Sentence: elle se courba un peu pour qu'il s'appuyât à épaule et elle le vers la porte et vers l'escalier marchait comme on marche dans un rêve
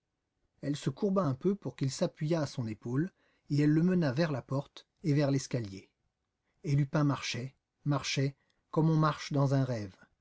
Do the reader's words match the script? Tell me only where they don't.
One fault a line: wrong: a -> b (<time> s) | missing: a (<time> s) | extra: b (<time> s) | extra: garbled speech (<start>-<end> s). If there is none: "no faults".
extra: son (2.5 s)
extra: mena (3.8 s)
extra: et lupin marchait (6.6 s)